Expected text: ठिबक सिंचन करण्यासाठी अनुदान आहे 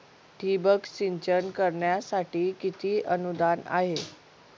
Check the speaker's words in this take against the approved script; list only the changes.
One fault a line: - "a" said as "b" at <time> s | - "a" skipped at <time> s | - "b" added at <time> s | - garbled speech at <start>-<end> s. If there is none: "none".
- "किती" added at 2.6 s